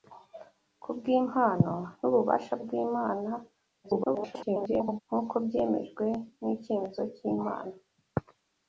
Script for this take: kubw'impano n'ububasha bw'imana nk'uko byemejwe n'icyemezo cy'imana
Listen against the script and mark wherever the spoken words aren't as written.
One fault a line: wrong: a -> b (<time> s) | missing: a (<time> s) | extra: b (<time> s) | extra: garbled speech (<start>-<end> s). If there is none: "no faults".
extra: garbled speech (3.8-5.0 s)